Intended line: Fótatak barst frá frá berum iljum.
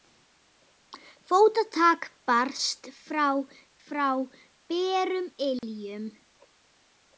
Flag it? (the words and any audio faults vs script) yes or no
yes